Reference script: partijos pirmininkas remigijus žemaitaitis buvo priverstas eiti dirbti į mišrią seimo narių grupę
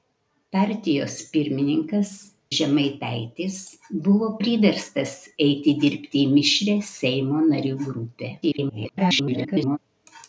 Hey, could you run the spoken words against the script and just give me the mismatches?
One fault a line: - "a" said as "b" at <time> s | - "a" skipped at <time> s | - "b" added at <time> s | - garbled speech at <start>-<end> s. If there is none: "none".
- "remigijus" skipped at 2.1 s
- garbled speech at 8.4-9.8 s